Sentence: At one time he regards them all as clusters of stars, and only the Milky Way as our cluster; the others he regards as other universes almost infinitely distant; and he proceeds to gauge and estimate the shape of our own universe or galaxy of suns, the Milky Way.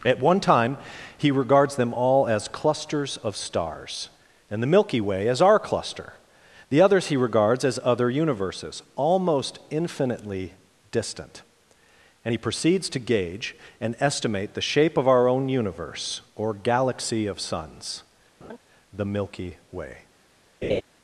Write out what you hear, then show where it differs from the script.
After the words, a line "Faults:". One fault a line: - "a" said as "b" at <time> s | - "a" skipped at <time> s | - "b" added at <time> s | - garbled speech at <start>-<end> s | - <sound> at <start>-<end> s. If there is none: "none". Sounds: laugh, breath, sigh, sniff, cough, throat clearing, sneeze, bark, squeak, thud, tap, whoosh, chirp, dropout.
At one time he regards them all as clusters of stars, and the Milky Way as our cluster; the others he regards as other universes almost infinitely distant; and he proceeds to gauge and estimate the shape of our own universe or galaxy of suns, the Milky Way.
Faults:
- "only" skipped at 4.6 s
- laugh at 18.4-18.6 s
- laugh at 20.6-20.8 s